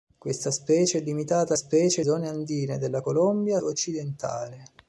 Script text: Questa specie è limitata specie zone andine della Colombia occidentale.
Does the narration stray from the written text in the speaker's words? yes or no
no